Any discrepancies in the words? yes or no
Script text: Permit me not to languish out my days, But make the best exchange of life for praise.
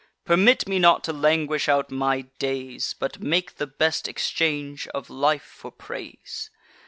no